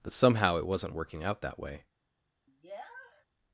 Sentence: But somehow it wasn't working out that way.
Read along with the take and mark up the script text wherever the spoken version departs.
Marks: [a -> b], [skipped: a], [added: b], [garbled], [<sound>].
But somehow it wasn't working out that way. [sniff]